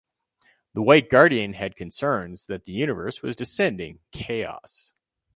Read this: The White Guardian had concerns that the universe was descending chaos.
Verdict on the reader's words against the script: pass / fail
pass